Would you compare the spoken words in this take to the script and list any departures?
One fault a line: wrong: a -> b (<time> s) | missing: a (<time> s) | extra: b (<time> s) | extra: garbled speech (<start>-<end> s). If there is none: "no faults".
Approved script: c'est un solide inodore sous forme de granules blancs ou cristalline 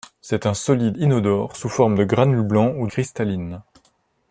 no faults